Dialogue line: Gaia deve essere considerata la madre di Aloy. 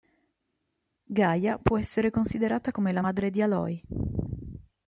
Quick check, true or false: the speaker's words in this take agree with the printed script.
false